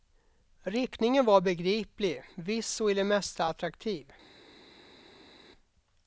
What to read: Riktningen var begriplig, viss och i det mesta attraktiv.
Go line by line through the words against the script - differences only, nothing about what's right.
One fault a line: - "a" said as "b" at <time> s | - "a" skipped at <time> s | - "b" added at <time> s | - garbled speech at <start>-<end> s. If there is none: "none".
none